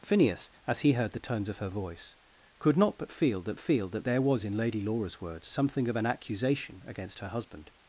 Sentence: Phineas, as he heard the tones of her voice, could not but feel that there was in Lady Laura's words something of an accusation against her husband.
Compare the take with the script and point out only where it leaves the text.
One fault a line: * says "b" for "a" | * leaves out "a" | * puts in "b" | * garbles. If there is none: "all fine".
* puts in "feel that"